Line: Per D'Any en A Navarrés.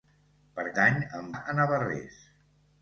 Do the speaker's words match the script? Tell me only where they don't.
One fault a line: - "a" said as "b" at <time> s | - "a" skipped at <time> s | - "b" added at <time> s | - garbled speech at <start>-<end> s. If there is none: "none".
none